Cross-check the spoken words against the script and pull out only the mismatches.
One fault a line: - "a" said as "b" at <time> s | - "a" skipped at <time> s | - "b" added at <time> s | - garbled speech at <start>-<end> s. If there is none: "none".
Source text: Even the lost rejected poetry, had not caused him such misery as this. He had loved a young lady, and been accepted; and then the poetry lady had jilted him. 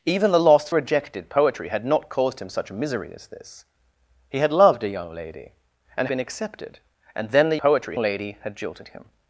none